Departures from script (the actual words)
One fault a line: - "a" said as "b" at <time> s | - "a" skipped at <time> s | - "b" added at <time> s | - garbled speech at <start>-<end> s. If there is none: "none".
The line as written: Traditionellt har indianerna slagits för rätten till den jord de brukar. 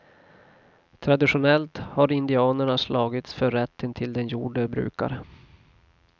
none